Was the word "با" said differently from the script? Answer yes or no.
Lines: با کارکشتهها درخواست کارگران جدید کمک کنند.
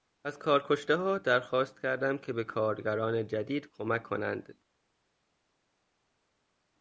yes